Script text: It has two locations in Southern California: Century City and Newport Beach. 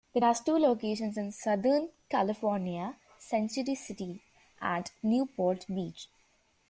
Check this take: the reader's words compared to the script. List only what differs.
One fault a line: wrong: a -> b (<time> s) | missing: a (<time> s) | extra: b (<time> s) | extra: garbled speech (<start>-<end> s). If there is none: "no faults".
no faults